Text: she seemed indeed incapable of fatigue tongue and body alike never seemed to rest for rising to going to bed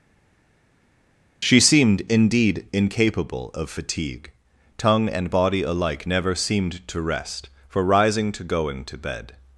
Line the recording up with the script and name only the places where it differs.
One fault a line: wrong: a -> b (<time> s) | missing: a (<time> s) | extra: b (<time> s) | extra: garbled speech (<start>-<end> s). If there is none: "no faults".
no faults